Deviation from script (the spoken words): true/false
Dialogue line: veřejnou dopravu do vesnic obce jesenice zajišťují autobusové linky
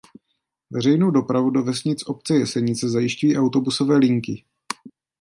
false